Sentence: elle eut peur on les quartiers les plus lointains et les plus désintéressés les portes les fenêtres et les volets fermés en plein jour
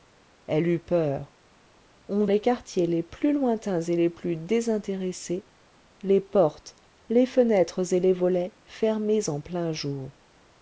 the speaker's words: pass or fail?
pass